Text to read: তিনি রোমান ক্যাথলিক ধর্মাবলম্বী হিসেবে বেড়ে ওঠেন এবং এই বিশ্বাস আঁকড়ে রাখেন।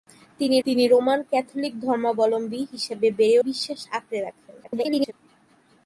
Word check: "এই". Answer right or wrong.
wrong